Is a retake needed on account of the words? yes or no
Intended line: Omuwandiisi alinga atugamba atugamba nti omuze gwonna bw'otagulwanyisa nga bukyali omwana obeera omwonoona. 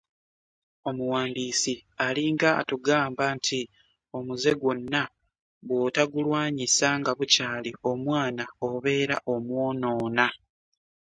yes